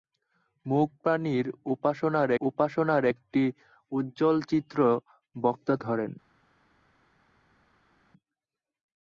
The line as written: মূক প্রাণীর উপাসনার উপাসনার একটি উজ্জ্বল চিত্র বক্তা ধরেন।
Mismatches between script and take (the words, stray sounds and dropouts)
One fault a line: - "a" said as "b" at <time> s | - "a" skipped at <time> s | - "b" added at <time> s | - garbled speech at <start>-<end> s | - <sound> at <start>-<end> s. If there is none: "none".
none